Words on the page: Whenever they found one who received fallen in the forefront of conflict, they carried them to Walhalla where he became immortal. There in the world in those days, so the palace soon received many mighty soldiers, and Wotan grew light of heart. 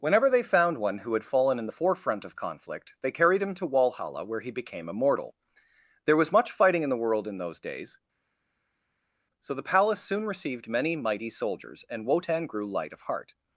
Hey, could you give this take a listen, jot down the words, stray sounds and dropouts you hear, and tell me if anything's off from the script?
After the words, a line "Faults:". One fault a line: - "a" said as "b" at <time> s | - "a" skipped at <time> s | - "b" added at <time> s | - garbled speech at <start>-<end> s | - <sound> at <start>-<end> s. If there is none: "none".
Whenever they found one who had fallen in the forefront of conflict, they carried him to Walhalla where he became immortal. There was much fighting in the world in those days, so the palace soon received many mighty soldiers, and Wotan grew light of heart.
Faults:
- "received" said as "had" at 1.1 s
- "them" said as "him" at 3.4 s
- "was much fighting" added at 6.2 s